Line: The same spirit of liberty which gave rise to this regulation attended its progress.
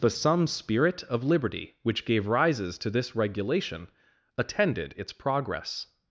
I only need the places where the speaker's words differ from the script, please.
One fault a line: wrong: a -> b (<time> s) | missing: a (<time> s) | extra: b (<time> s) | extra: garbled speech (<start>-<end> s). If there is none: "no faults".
wrong: same -> some (0.1 s)
wrong: rise -> rises (2.2 s)